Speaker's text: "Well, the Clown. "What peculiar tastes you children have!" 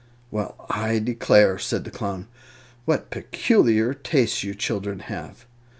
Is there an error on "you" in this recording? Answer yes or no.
no